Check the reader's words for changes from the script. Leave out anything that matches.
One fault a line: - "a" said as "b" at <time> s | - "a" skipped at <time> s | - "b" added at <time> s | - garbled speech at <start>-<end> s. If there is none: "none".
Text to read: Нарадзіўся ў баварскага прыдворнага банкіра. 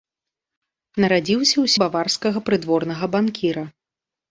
none